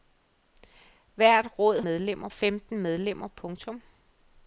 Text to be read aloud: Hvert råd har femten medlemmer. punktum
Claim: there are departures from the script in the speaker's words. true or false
true